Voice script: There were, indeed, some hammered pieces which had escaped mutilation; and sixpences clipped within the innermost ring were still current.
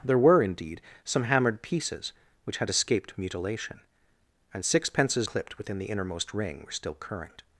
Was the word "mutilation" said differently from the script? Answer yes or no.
no